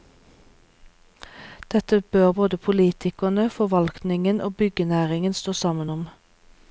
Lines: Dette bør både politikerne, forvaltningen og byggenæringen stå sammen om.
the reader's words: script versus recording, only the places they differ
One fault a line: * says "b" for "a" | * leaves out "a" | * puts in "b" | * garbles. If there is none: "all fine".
all fine